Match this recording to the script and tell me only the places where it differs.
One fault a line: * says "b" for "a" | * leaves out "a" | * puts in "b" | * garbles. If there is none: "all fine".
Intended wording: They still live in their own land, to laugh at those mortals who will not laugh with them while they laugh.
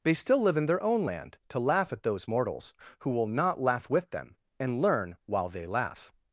* puts in "and learn"